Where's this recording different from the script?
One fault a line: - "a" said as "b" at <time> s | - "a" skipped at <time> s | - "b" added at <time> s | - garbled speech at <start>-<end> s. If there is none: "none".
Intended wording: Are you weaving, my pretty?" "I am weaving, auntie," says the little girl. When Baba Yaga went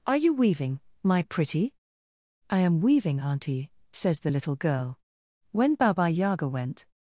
none